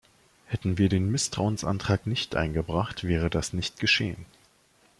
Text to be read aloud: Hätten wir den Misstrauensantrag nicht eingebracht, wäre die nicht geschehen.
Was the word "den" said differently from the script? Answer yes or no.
no